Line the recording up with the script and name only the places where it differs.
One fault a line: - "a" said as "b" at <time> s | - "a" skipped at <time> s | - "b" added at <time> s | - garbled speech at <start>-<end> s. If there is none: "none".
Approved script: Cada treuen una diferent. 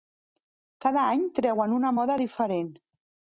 - "any" added at 1.1 s
- "moda" added at 2.0 s